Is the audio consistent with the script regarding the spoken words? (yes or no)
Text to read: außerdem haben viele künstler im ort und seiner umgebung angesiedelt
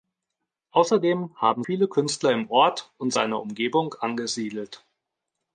yes